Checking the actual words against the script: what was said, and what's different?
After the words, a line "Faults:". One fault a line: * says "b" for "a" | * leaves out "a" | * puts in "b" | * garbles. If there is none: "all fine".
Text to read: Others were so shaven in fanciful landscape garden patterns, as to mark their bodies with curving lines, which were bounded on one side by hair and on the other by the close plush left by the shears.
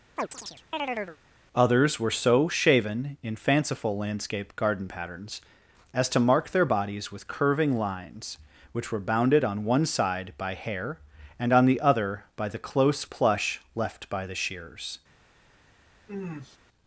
Others were so shaven in fanciful landscape garden patterns, as to mark their bodies with curving lines, which were bounded on one side by hair and on the other by the close plush left by the shears.
Faults:
all fine